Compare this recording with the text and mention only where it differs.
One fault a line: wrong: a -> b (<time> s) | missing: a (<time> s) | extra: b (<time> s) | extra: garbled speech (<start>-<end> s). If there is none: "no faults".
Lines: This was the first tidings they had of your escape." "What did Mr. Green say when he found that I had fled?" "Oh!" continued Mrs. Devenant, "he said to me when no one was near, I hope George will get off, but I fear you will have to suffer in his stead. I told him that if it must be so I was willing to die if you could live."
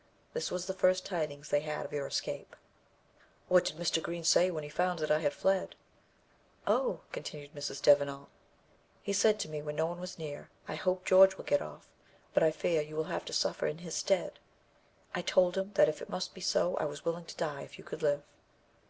no faults